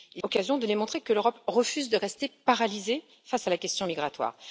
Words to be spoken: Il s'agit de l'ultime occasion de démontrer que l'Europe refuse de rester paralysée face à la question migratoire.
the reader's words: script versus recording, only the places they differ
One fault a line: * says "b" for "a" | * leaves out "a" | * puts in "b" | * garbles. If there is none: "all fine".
* leaves out "s'agit de l'ultime"